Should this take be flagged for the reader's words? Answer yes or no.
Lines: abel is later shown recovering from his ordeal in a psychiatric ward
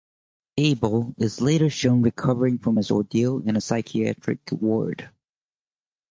no